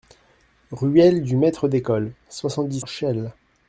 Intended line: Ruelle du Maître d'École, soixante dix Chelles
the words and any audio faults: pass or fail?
pass